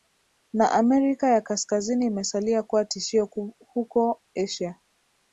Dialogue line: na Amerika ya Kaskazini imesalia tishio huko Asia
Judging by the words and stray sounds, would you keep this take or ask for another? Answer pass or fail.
fail